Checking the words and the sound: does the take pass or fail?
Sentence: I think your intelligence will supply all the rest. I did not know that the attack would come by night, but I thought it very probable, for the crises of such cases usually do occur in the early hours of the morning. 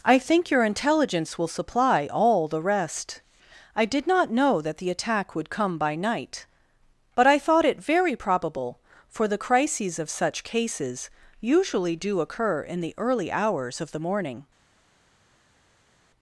pass